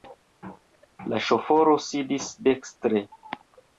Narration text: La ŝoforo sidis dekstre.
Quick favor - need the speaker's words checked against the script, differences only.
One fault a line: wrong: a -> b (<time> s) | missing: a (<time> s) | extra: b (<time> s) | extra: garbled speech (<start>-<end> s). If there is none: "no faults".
no faults